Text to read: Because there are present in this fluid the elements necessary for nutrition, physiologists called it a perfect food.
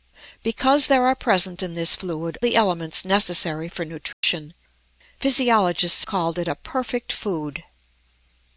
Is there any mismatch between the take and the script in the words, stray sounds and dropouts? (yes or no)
yes